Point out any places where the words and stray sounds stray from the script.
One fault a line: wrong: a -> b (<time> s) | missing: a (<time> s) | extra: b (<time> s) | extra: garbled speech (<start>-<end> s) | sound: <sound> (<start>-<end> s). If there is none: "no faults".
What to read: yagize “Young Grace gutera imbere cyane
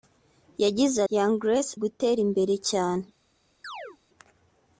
sound: chirp (3.6-4.0 s)